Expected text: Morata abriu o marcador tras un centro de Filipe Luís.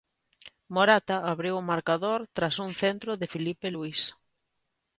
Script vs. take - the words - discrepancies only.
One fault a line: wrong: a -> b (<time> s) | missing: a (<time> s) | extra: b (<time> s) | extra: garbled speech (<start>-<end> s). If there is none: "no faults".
no faults